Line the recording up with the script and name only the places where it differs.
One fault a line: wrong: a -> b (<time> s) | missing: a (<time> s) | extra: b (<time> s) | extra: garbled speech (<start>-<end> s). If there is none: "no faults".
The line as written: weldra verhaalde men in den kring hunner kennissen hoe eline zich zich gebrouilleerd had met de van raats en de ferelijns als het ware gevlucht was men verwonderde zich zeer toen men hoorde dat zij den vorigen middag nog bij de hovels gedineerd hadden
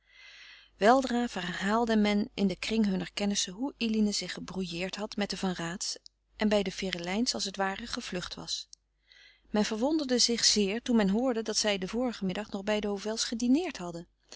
missing: zich (4.3 s)
extra: bij (6.5 s)